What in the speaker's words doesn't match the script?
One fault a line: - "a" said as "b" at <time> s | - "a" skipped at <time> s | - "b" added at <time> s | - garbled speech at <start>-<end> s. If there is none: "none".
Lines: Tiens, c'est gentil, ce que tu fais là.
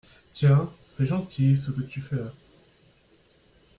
none